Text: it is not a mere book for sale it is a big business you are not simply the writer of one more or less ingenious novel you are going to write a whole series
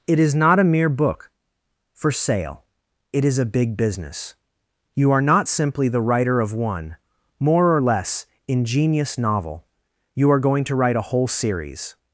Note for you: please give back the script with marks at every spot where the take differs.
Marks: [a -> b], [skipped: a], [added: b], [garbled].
it is not a mere book for sale it is a big business you are not simply the writer of one more or less ingenious novel you are going to write a whole series